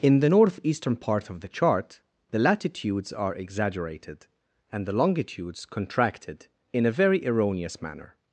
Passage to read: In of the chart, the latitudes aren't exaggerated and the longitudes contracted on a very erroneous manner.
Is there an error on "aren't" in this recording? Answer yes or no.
yes